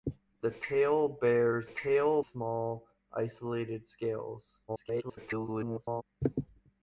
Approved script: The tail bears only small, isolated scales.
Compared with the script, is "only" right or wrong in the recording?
wrong